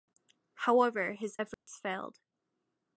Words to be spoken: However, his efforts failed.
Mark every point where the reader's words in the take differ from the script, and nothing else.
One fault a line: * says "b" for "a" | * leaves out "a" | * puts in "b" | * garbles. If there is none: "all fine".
all fine